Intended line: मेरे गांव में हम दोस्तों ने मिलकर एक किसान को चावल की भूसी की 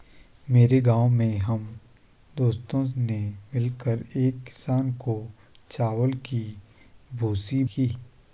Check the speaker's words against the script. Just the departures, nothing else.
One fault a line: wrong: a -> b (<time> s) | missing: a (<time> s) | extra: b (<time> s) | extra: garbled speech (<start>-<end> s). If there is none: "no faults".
no faults